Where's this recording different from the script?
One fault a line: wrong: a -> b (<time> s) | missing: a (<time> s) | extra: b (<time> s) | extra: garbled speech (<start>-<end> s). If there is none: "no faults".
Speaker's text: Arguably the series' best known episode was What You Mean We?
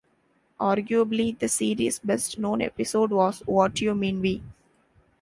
no faults